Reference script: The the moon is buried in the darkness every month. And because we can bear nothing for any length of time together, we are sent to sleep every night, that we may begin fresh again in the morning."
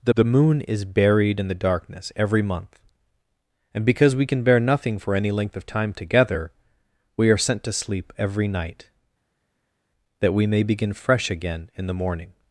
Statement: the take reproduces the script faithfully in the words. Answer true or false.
true